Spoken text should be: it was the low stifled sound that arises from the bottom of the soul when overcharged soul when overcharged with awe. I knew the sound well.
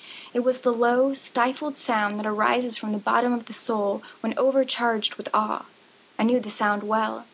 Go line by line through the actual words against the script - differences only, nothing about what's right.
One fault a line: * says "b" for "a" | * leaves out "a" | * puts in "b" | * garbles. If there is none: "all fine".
* leaves out "soul when overcharged"